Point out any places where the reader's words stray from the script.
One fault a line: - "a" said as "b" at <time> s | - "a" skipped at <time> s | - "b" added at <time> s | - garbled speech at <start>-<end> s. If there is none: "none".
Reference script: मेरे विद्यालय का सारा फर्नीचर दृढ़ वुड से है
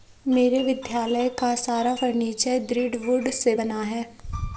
- "बना" added at 3.5 s